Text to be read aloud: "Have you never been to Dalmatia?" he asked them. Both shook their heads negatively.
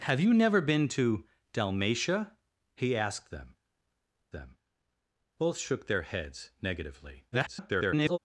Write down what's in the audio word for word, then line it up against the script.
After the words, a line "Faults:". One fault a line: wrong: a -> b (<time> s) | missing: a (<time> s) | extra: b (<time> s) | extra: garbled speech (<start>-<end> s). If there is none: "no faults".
"Have you never been to Dalmatia?" he asked them them. Both shook their heads negatively. [garbled]
Faults:
extra: them (4.3 s)
extra: garbled speech (7.3-8.2 s)